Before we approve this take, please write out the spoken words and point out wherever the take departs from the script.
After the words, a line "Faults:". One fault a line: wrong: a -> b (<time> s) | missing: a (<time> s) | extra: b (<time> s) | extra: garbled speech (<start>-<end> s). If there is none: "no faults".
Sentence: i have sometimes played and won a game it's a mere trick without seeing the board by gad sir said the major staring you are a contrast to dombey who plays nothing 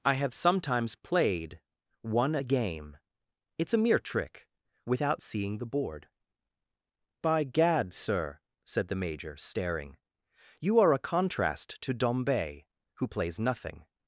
i have sometimes played won a game it's a mere trick without seeing the board by gad sir said the major staring you are a contrast to dombey who plays nothing
Faults:
missing: and (1.6 s)